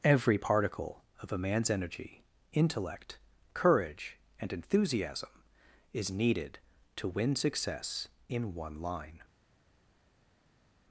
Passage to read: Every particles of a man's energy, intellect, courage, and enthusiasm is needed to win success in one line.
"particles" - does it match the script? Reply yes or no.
no